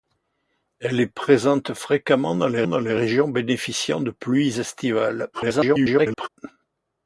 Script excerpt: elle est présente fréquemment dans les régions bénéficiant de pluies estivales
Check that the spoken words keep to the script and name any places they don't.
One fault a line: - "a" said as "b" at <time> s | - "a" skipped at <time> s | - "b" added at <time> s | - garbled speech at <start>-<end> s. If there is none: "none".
- "dans les" added at 2.6 s
- garbled speech at 5.3-6.3 s